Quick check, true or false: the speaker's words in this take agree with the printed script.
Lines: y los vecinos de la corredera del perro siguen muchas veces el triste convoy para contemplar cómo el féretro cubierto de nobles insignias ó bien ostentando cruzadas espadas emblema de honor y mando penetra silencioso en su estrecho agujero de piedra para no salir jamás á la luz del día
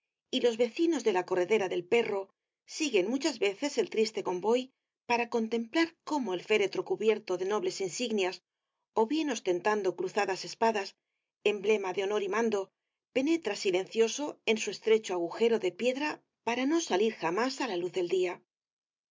true